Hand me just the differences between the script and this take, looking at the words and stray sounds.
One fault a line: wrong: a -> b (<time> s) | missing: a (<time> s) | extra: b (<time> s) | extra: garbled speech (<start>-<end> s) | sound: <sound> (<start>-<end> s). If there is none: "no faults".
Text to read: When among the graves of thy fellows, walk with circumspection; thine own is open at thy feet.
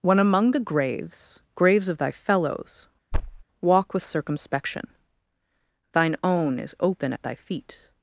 extra: graves (1.5 s)
sound: thud (3.1-3.4 s)